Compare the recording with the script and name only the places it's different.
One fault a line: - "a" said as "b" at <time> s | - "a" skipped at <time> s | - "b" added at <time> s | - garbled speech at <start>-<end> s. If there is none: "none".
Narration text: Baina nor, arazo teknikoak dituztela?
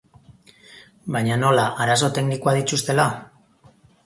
- "nor" said as "nola" at 1.4 s